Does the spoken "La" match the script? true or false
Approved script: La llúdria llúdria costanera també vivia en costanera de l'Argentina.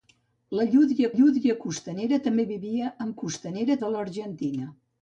true